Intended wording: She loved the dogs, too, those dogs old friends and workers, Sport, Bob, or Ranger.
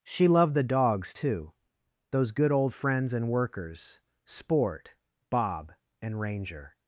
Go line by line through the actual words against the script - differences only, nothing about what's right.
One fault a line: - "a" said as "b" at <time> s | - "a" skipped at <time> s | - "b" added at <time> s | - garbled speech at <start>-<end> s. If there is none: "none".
- "dogs" said as "good" at 2.3 s
- "or" said as "and" at 6.0 s